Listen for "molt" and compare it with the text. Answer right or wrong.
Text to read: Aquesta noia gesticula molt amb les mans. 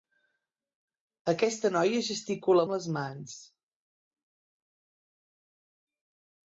wrong